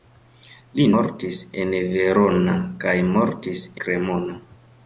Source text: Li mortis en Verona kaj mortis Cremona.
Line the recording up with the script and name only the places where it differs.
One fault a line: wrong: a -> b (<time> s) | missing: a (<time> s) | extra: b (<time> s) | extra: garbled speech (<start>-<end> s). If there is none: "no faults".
no faults